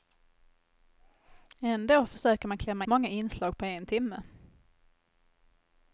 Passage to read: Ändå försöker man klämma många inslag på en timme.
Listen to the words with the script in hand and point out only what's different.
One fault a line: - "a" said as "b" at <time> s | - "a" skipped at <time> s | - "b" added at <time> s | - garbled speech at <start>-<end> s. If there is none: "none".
none